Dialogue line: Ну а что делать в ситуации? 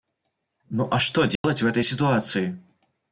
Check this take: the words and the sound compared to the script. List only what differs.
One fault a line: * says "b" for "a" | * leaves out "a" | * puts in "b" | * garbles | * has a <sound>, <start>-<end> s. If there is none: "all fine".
* has a dropout, 1.4-1.4 s
* puts in "этой"